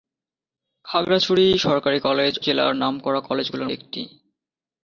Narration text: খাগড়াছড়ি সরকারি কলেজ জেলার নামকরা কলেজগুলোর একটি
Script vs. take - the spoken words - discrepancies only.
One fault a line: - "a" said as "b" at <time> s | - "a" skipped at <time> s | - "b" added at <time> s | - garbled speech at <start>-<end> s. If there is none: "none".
none